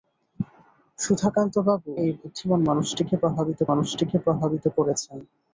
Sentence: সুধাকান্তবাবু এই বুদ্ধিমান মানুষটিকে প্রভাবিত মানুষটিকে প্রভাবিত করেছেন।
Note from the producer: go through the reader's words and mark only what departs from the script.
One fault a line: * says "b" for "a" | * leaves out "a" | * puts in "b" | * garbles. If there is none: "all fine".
all fine